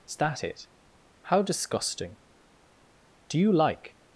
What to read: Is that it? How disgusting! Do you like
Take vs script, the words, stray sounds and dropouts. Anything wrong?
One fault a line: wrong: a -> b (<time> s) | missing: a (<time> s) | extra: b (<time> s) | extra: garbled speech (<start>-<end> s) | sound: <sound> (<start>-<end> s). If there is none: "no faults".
no faults